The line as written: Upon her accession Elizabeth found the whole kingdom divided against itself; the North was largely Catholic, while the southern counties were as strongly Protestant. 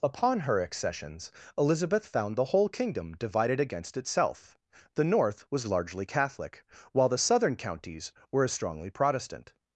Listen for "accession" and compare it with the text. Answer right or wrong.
wrong